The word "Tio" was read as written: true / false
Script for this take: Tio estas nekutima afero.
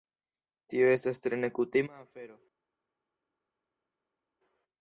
true